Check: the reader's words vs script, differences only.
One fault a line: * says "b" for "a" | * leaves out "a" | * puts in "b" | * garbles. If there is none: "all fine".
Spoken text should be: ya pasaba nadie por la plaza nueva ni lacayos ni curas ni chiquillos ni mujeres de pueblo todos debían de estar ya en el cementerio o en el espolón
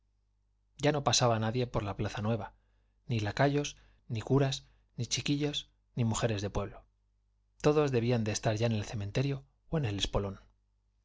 * puts in "no"